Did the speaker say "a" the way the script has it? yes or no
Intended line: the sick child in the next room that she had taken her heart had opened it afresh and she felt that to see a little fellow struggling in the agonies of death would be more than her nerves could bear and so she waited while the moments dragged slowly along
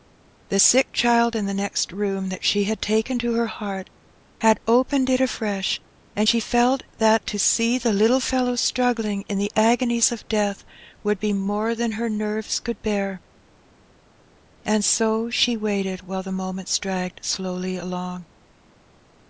no